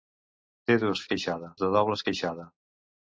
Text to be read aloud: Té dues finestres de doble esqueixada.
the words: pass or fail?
fail